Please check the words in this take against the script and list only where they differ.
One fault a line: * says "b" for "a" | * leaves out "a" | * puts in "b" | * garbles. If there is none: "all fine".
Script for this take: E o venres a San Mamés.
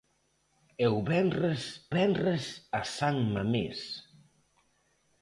* puts in "venres"